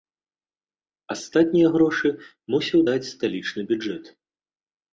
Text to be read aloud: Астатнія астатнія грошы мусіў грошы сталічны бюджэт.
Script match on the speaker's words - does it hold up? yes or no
no